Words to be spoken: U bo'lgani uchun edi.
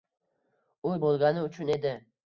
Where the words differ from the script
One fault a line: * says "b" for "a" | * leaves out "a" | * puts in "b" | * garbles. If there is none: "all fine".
all fine